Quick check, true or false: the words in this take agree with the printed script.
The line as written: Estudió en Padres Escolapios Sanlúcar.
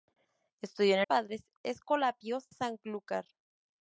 true